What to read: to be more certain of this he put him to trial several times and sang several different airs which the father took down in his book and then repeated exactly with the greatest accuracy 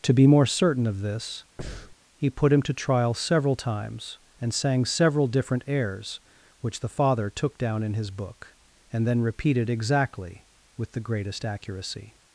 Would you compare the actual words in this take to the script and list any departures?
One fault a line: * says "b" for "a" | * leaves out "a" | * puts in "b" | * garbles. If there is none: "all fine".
all fine